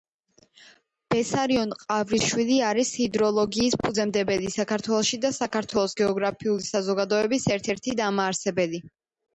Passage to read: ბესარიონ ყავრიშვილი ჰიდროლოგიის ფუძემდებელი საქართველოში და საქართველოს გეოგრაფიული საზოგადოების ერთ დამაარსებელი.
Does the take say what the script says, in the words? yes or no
no